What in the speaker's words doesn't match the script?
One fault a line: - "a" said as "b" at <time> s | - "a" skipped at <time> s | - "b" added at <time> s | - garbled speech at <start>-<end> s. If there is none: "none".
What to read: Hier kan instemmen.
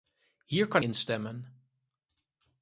none